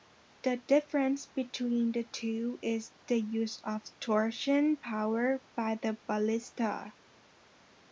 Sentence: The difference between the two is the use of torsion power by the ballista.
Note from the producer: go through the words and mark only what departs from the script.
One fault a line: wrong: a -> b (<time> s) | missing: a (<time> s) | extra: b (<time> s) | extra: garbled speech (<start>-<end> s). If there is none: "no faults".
no faults